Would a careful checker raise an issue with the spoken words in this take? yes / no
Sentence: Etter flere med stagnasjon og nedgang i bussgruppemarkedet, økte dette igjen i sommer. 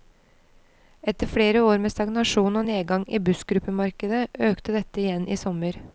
yes